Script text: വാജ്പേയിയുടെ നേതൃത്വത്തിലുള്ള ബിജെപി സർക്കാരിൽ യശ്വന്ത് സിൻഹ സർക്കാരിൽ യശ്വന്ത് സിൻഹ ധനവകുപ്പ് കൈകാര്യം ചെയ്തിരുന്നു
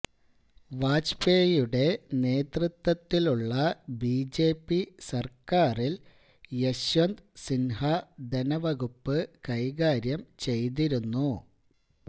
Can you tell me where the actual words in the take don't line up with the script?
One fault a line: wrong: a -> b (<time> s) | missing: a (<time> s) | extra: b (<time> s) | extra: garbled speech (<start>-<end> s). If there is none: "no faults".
missing: സർക്കാരിൽ യശ്വന്ത് സിൻഹ (7.8 s)